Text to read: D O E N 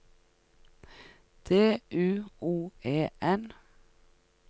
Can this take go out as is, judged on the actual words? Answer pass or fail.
fail